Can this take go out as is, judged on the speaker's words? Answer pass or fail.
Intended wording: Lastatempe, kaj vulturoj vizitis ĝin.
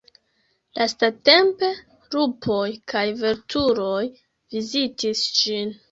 fail